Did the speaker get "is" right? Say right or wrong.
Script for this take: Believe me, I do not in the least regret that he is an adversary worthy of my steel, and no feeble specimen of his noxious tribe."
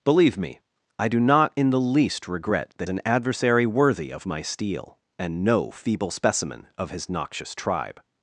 wrong